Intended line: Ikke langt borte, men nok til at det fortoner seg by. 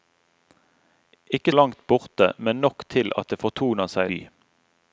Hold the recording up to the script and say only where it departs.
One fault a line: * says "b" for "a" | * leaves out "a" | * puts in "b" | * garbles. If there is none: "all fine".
all fine